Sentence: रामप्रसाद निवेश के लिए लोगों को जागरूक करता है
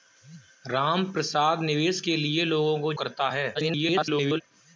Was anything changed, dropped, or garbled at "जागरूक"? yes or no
yes